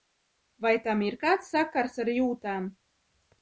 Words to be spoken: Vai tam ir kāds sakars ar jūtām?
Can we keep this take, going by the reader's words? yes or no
yes